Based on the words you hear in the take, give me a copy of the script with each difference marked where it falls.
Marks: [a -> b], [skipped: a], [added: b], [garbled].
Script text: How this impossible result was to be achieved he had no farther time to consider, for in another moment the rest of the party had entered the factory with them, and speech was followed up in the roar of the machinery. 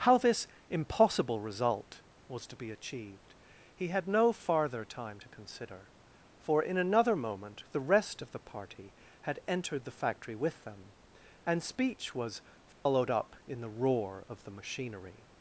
How this impossible result was to be achieved he had no farther time to consider, for in another moment the rest of the party had entered the factory with them, and speech was followed up in the roar of the machinery.